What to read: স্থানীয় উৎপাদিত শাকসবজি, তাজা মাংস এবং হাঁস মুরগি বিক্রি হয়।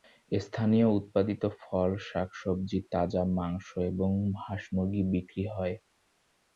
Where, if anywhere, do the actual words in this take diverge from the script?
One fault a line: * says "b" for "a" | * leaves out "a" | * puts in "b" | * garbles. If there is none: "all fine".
* puts in "ফল"